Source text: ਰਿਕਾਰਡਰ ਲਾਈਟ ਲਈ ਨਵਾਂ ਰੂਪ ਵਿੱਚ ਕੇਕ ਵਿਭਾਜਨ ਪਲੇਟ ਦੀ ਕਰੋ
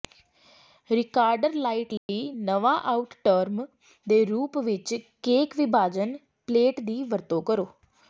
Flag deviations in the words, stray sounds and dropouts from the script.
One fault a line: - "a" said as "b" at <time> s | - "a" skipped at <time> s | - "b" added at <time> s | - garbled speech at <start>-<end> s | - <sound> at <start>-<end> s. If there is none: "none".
- dropout at 2.0-2.1 s
- "ਆਊਟ ਟਰਮ ਦੇ" added at 2.9 s
- "ਵਰਤੋਂ" added at 7.0 s